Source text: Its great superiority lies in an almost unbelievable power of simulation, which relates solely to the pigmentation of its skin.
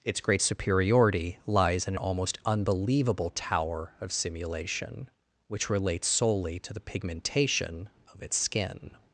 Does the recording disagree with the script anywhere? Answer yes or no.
yes